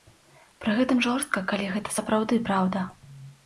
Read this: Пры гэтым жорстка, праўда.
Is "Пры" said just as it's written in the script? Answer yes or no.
yes